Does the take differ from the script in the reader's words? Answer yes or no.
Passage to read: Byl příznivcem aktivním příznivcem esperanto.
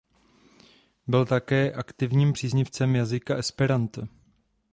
yes